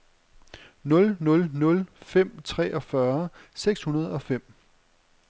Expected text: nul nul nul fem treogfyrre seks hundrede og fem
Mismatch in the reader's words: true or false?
false